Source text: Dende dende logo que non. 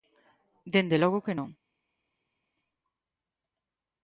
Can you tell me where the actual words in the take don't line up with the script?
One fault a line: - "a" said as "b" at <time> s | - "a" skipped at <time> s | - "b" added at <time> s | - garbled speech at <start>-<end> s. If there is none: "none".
- "dende" skipped at 1.0 s